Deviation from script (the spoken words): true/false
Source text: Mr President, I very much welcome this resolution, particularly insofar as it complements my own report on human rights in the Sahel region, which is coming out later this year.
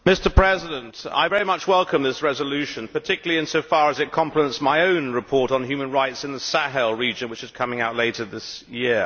false